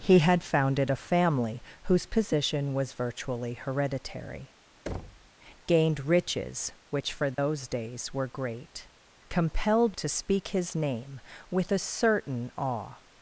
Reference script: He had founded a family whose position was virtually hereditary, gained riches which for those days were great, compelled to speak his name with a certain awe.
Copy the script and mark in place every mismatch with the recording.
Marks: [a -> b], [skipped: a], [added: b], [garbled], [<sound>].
He had founded a family whose position was virtually hereditary, [thud] gained riches which for those [dropout] days were great, compelled to speak his name with a certain awe.